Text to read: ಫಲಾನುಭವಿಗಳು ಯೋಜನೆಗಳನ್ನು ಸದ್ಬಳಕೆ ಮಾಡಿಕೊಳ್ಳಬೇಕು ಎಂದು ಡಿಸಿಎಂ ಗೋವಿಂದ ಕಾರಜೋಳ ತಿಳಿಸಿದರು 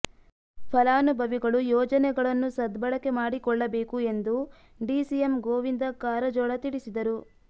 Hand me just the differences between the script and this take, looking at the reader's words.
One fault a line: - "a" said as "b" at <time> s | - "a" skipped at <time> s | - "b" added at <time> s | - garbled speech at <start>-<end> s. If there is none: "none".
none